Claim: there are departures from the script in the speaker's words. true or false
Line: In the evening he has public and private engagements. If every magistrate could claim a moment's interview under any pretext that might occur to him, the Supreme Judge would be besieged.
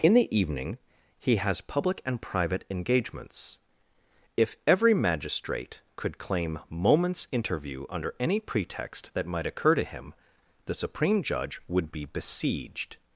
true